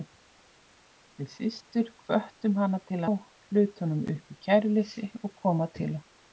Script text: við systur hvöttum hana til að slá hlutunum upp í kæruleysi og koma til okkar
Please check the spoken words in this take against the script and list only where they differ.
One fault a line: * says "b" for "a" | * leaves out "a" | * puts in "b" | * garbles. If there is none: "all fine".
* leaves out "að slá"